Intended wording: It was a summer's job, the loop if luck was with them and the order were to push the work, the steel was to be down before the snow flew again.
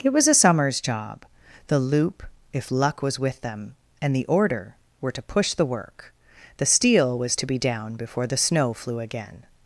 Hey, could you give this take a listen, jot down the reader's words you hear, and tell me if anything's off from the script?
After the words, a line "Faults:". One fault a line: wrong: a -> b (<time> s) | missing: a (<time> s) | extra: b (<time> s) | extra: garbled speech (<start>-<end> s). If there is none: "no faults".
It was a summer's job, the loop if luck was with them and the order were to push the work, the steel was to be down before the snow flew again.
Faults:
no faults